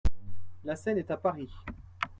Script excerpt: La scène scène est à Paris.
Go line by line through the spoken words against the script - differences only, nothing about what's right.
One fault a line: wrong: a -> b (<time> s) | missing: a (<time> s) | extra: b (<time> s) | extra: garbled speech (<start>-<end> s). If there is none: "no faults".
missing: scène (1.0 s)